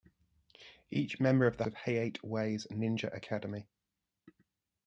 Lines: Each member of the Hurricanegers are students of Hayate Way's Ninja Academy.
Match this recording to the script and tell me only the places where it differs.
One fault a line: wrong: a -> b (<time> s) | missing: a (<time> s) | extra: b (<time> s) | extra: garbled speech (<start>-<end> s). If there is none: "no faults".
missing: Hurricanegers are students (1.6 s)